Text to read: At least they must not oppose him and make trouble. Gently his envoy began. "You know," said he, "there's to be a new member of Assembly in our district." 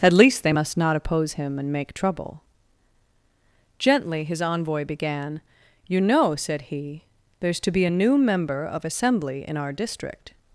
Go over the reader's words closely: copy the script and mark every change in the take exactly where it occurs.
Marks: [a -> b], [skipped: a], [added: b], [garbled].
At least they must not oppose him and make trouble. Gently his envoy began. "You know," said he, "there's to be a new member of Assembly in our district."